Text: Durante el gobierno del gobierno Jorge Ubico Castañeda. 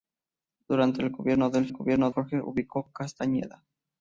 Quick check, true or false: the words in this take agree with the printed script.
true